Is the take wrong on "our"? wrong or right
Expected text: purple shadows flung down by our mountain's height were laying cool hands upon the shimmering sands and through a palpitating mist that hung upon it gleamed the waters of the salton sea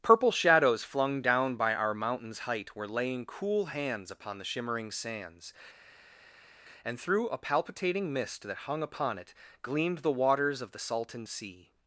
right